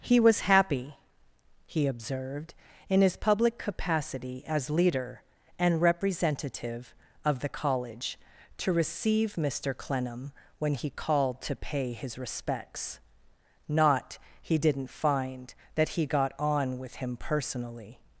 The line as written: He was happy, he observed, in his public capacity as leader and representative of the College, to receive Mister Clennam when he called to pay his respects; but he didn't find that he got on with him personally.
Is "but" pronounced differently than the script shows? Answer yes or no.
yes